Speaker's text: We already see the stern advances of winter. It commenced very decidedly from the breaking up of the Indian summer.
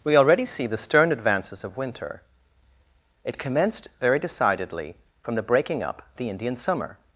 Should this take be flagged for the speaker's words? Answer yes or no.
yes